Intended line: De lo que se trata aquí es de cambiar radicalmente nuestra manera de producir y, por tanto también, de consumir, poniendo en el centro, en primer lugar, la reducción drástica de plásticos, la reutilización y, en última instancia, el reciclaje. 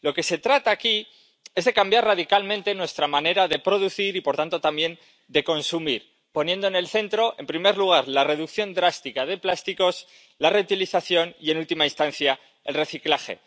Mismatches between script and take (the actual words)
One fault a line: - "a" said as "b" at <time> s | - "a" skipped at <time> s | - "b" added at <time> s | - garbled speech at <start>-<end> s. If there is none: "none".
none